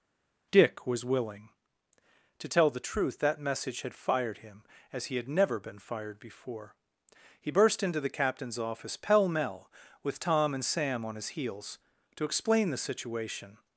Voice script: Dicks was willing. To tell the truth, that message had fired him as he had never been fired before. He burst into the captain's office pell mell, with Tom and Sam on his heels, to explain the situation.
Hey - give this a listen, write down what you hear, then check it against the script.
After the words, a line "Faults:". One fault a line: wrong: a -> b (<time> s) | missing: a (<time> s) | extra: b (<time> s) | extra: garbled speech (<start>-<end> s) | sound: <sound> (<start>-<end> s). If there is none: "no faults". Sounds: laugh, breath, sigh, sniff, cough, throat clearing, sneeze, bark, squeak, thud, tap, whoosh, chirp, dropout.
Dick was willing. To tell the truth, that message had fired him as he had never been fired before. He burst into the captain's office pell mell, with Tom and Sam on his heels, to explain the situation.
Faults:
wrong: Dicks -> Dick (0.5 s)